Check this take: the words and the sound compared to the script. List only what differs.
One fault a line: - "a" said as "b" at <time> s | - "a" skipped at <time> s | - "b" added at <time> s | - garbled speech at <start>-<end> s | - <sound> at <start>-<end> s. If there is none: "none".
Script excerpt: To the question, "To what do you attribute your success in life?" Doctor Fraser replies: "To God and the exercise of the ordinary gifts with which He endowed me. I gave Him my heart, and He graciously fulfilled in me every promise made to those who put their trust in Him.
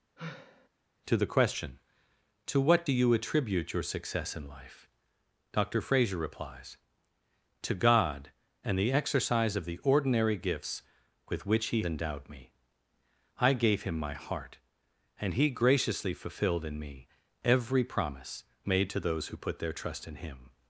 - sigh at 0.2-0.7 s